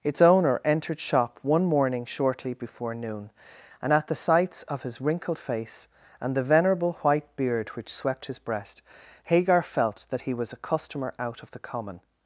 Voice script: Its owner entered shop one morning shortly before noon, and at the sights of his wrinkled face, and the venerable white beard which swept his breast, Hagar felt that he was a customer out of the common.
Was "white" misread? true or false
false